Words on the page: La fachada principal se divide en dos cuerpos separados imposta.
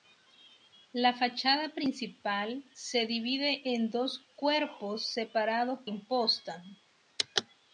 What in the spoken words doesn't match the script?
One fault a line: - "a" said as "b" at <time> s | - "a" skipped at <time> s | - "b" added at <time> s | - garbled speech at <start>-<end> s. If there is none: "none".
none